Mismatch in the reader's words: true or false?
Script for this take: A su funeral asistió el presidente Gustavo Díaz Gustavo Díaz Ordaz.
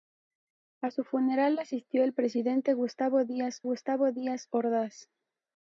false